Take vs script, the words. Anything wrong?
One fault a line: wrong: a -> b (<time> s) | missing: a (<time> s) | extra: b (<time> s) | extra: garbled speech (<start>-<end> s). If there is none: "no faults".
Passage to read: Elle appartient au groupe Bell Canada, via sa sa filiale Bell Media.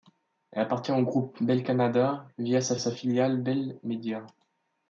no faults